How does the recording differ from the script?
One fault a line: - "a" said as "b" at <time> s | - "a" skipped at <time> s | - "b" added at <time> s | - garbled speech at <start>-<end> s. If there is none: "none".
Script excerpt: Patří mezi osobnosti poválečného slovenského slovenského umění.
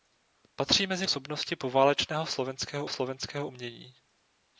none